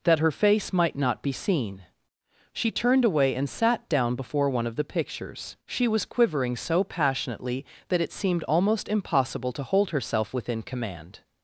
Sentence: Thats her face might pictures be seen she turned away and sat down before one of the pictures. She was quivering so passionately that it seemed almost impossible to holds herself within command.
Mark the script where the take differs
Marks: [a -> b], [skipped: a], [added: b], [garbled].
[Thats -> That] her face might [pictures -> not] be seen she turned away and sat down before one of the pictures. She was quivering so passionately that it seemed almost impossible to [holds -> hold] herself within command.